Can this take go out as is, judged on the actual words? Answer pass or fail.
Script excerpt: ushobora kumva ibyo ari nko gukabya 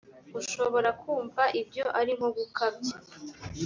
pass